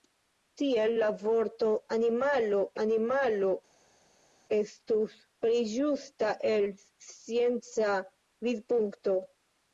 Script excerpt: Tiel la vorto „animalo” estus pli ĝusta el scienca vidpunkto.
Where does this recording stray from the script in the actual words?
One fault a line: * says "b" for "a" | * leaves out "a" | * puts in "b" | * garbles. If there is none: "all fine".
* puts in "animalo"